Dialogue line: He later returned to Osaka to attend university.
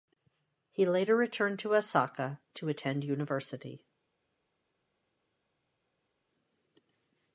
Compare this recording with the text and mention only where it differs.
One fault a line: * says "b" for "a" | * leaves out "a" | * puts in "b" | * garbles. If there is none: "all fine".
all fine